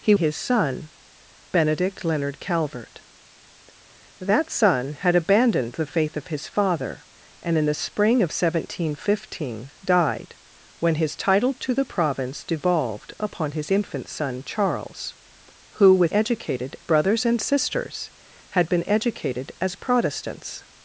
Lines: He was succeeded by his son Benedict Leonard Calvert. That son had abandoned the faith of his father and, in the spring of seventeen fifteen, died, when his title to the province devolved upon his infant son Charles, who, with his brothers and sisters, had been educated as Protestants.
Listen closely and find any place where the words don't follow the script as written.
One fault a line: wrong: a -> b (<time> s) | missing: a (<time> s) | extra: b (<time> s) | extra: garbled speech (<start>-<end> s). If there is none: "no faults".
missing: was succeeded by (0.1 s)
wrong: his -> educated (16.1 s)